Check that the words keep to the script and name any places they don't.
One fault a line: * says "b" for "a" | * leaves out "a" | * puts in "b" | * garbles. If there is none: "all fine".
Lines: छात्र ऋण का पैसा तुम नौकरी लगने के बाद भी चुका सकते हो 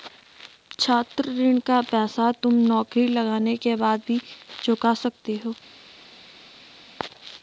all fine